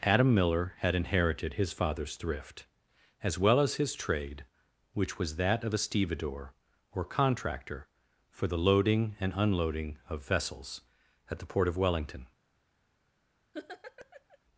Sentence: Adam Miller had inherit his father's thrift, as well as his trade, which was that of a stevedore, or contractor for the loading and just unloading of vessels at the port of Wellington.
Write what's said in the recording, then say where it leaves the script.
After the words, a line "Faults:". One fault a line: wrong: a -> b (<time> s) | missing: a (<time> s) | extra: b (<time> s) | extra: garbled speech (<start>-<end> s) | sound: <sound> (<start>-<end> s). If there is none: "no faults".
Adam Miller had inherited his father's thrift, as well as his trade, which was that of a stevedore, or contractor for the loading and unloading of vessels at the port of Wellington.
Faults:
wrong: inherit -> inherited (0.9 s)
missing: just (9.3 s)
sound: laugh (13.5-14.4 s)